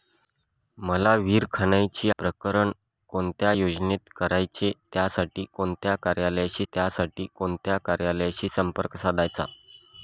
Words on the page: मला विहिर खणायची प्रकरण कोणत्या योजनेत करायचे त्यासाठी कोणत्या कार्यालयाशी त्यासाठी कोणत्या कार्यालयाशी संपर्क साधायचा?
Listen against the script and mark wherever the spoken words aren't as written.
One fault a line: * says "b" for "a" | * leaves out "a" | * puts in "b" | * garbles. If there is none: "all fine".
all fine